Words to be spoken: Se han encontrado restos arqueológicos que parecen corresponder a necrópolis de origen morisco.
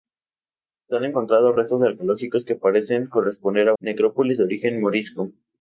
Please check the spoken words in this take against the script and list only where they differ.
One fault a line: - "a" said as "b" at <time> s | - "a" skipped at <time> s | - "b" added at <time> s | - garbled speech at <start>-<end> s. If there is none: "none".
none